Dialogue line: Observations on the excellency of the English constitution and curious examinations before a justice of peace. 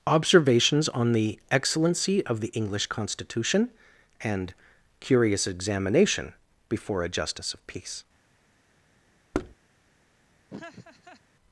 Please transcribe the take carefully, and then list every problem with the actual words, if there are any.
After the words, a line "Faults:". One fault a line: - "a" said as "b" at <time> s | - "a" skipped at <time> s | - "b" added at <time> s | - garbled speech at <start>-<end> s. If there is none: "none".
Observations on the excellency of the English constitution and curious examination before a justice of peace.
Faults:
- "examinations" said as "examination" at 5.5 s